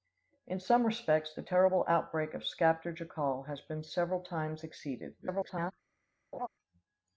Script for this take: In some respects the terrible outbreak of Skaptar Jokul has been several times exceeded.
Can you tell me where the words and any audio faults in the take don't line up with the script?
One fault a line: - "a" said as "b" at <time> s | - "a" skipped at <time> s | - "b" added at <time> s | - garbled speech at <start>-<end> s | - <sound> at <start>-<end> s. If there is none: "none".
- garbled speech at 5.2-5.7 s
- laugh at 6.3-6.5 s